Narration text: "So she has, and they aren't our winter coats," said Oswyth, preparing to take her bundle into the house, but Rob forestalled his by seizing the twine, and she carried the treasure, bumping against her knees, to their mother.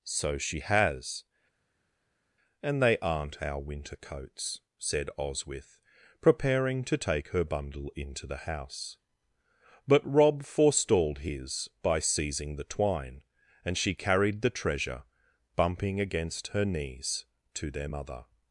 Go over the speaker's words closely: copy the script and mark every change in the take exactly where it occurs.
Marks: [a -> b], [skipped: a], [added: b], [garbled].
"So she has, and they aren't our winter coats," said Oswyth, preparing to take her bundle into the house, but Rob forestalled his by seizing the twine, and she carried the treasure, bumping against her knees, to their mother.